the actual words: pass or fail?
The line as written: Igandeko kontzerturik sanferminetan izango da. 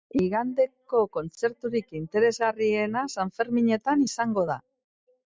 fail